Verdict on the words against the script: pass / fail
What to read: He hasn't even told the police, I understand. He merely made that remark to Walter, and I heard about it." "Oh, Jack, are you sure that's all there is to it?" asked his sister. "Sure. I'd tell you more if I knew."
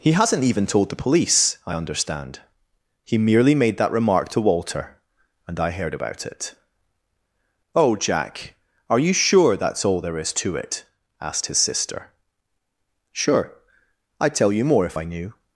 pass